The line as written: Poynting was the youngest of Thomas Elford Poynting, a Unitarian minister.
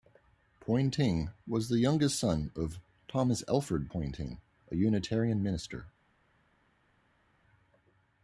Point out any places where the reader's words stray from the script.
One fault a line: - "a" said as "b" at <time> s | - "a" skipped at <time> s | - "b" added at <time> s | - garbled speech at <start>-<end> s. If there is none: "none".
- "son" added at 2.2 s